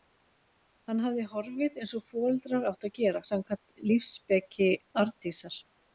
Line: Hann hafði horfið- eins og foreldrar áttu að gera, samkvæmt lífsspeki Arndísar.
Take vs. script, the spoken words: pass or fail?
pass